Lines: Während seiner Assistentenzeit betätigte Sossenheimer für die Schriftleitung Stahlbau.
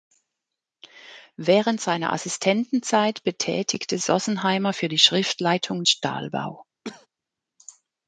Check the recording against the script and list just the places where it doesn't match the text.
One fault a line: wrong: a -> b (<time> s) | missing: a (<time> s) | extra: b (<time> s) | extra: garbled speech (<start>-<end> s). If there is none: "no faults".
no faults